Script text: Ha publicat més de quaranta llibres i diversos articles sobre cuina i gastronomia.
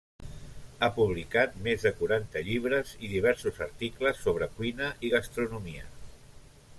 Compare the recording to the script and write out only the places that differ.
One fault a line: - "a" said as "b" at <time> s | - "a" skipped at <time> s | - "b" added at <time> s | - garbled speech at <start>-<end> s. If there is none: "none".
none